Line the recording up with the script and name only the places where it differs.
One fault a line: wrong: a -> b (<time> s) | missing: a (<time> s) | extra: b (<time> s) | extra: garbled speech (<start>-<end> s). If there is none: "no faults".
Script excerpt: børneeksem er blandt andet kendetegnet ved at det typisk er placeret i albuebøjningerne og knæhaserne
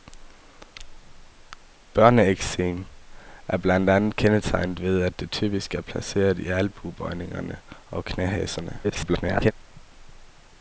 extra: garbled speech (8.8-9.5 s)